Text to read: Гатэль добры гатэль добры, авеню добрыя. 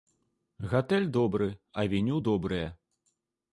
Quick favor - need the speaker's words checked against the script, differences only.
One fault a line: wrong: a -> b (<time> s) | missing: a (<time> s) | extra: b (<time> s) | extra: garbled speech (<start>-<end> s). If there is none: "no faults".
missing: гатэль добры (1.6 s)